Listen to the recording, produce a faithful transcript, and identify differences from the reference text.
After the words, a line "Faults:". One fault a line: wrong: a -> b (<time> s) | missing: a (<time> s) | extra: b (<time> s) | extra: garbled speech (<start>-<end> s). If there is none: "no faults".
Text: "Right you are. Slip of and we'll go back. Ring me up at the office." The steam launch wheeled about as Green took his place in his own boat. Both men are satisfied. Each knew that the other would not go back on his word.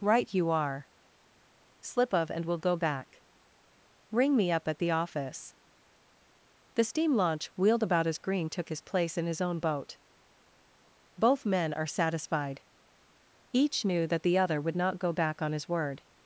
"Right you are. Slip of and we'll go back. Ring me up at the office." The steam launch wheeled about as Green took his place in his own boat. Both men are satisfied. Each knew that the other would not go back on his word.
Faults:
no faults